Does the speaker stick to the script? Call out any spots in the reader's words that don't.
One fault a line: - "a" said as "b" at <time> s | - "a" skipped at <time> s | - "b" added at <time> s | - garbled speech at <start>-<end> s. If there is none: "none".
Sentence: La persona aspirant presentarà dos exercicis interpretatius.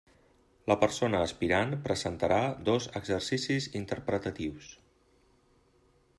none